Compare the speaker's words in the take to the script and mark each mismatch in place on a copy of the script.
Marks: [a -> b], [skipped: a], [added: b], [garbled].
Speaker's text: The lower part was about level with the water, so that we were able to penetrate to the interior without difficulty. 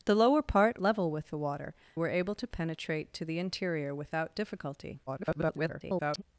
The lower part [skipped: was about] level with the water, [skipped: so that we] were able to penetrate to the interior without difficulty. [garbled]